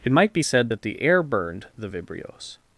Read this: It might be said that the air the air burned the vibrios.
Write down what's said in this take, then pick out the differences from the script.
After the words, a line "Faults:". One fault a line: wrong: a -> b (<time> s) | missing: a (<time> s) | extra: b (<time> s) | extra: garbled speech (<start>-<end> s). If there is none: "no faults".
It might be said that the air burned the vibrios.
Faults:
missing: the air (1.2 s)